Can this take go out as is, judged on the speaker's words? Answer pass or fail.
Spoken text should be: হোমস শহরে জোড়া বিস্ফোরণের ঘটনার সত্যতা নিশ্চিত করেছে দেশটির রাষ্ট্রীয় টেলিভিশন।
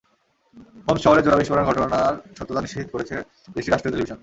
pass